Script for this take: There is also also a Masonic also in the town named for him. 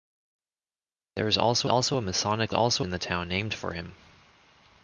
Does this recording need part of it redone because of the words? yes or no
no